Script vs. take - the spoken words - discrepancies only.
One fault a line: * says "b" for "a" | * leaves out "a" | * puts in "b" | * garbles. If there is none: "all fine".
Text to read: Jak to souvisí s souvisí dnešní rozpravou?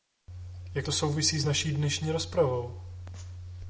* says "naší" for "souvisí"